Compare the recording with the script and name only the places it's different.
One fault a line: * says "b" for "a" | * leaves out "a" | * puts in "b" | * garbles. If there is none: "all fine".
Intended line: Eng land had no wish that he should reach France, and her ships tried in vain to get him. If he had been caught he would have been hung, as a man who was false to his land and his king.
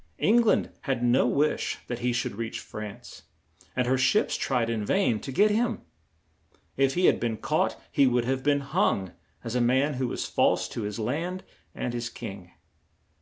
all fine